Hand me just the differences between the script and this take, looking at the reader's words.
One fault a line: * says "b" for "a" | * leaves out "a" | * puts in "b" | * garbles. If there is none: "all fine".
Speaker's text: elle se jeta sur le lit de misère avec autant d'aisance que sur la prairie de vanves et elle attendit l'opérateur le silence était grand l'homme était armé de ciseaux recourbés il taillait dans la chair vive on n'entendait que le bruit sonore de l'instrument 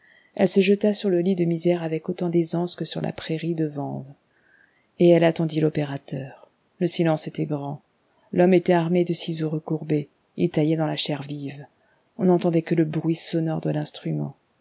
all fine